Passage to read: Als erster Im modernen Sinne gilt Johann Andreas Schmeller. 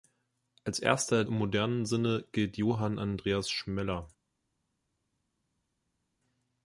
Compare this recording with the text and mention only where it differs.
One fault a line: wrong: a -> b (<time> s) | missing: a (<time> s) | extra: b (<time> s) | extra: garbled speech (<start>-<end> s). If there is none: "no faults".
no faults